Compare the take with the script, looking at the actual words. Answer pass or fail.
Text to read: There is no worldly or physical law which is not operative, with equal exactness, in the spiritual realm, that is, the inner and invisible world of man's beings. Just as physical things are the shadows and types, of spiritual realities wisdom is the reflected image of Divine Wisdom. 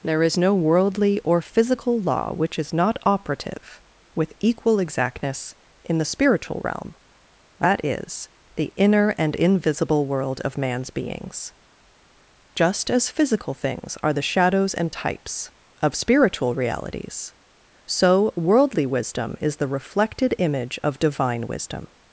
fail